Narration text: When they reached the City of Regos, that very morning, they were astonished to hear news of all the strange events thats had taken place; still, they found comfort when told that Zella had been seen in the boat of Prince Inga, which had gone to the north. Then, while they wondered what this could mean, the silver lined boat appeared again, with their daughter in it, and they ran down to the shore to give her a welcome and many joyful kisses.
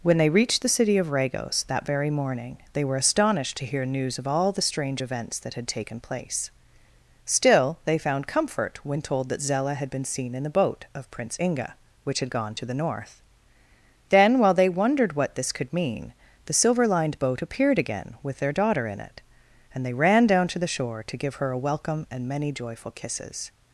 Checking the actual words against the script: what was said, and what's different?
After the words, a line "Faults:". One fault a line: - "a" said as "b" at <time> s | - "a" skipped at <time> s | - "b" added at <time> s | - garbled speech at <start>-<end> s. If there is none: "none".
When they reached the City of Regos, that very morning, they were astonished to hear news of all the strange events that had taken place; still, they found comfort when told that Zella had been seen in the boat of Prince Inga, which had gone to the north. Then, while they wondered what this could mean, the silver lined boat appeared again, with their daughter in it, and they ran down to the shore to give her a welcome and many joyful kisses.
Faults:
- "thats" said as "that" at 5.4 s